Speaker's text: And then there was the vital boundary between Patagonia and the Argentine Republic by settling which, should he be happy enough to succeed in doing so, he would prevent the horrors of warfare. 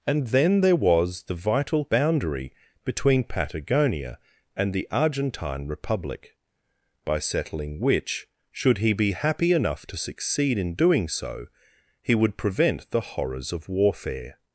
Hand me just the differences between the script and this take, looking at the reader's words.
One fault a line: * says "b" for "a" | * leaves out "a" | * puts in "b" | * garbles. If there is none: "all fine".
all fine